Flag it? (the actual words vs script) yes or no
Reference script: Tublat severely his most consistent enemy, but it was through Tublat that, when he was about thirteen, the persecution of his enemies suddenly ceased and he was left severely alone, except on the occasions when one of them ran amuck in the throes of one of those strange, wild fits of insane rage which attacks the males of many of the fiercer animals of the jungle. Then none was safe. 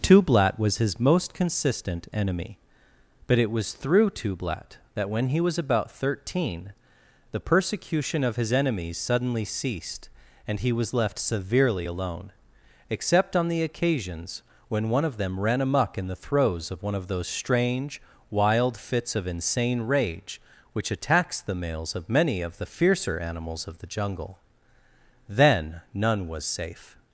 yes